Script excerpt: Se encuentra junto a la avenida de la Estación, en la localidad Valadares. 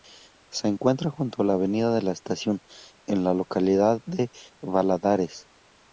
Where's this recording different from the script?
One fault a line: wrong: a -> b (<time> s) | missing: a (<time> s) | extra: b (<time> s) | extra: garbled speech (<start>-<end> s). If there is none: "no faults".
extra: de (4.0 s)